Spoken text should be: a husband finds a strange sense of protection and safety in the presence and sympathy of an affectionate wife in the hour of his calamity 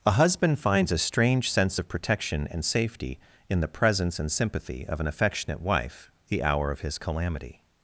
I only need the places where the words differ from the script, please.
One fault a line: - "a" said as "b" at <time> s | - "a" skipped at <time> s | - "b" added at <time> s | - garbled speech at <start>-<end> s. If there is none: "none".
- "in" skipped at 6.1 s